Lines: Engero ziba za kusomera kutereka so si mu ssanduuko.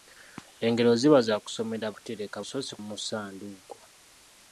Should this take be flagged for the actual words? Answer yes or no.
no